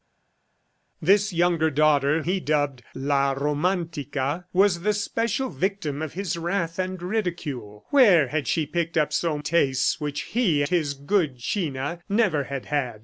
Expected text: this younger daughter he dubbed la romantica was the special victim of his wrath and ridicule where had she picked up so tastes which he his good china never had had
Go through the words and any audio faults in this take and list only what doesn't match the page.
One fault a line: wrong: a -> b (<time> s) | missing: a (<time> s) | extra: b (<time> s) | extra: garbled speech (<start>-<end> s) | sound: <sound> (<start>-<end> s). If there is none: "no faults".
no faults